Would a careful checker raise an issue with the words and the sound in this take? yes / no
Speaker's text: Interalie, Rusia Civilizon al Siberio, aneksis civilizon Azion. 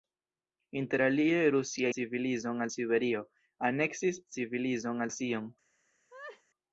yes